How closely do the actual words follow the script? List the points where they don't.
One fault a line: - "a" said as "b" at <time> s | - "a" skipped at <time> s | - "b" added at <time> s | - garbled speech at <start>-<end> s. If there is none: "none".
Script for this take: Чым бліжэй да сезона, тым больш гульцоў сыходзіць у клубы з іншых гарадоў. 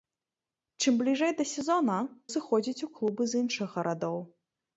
- "тым больш гульцоў" skipped at 2.0 s